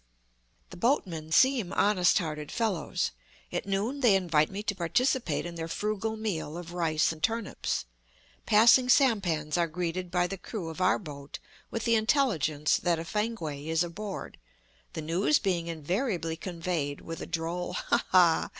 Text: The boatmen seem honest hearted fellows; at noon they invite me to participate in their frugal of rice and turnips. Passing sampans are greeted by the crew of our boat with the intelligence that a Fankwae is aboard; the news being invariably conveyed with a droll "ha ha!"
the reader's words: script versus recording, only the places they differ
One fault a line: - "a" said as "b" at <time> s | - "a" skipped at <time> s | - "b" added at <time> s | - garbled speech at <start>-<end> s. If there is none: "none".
- "meal" added at 6.1 s